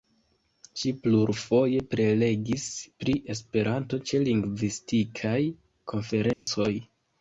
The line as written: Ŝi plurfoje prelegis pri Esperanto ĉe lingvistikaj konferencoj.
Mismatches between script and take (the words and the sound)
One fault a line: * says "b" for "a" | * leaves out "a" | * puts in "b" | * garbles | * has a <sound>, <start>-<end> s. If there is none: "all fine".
* has a dropout, 6.3-6.5 s